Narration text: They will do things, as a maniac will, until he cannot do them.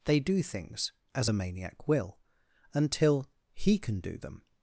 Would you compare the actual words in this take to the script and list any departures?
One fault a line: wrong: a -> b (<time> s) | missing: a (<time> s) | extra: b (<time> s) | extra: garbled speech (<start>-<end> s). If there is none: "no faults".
missing: will (0.2 s)
wrong: cannot -> can (3.8 s)